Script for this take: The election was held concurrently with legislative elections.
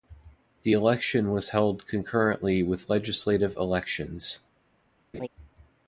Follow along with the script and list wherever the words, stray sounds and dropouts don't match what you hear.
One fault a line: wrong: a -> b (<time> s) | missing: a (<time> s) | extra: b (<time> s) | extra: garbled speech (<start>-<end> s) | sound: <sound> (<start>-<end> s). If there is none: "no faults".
sound: laugh (5.1-5.3 s)